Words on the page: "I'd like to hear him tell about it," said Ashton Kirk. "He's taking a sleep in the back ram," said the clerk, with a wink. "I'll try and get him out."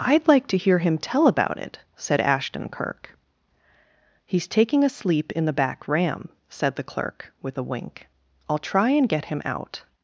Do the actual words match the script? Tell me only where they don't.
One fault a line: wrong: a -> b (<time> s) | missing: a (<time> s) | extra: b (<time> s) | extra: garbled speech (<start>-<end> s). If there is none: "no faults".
no faults